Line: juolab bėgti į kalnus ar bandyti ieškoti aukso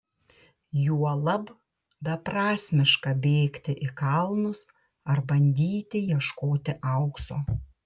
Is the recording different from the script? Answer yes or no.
yes